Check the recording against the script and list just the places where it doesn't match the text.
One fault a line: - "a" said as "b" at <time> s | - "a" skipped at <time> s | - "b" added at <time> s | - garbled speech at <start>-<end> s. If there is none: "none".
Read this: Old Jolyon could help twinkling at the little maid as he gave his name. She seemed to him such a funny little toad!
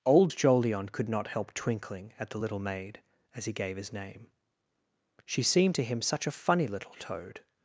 - "not" added at 1.1 s